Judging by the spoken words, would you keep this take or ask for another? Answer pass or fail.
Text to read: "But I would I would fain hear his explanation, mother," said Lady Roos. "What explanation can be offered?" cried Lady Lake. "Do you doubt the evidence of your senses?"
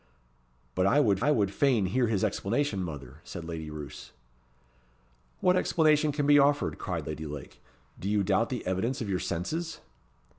pass